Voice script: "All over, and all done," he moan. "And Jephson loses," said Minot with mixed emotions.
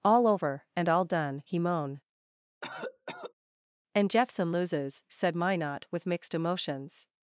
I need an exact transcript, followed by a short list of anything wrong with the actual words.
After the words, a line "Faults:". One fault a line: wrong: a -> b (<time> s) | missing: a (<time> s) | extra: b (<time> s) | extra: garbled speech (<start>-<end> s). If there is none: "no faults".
"All over, and all done," he moan. "And Jephson loses," said Minot with mixed emotions.
Faults:
no faults